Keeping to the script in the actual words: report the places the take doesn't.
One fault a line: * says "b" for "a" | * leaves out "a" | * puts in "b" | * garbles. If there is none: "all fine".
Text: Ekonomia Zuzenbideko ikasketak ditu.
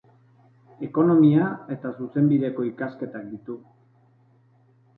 * puts in "eta"